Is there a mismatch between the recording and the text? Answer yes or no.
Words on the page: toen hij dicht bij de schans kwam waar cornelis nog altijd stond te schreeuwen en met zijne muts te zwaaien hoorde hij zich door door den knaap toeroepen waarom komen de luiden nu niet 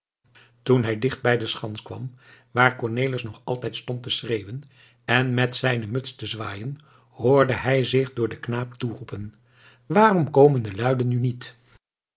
yes